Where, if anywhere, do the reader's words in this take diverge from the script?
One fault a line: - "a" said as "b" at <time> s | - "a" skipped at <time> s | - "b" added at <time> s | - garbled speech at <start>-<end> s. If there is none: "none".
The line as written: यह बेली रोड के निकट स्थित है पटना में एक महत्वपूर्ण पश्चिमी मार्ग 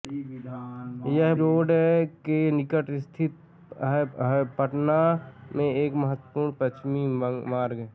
- "बेली" skipped at 1.3 s
- "है" added at 4.2 s